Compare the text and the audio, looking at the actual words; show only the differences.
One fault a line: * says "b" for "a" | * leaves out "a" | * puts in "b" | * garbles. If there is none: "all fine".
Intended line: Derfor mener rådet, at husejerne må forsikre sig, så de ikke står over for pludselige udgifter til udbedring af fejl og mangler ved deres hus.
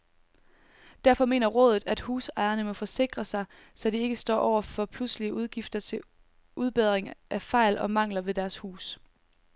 all fine